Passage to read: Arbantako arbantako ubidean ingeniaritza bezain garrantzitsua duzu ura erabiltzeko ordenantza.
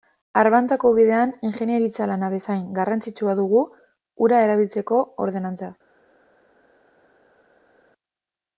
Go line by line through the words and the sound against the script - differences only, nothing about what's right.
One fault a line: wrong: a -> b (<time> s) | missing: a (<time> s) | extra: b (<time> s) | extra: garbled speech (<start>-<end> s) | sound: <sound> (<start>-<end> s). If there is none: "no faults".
missing: arbantako (0.9 s)
extra: lana (2.1 s)
wrong: duzu -> dugu (3.4 s)